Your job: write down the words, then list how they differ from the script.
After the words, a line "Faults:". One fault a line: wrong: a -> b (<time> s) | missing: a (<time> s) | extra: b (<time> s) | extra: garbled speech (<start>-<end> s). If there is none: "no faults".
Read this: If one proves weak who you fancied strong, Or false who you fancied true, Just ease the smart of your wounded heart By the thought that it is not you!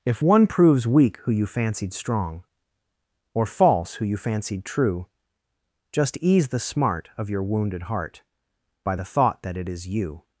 If one proves weak who you fancied strong, Or false who you fancied true, Just ease the smart of your wounded heart By the thought that it is you!
Faults:
missing: not (9.9 s)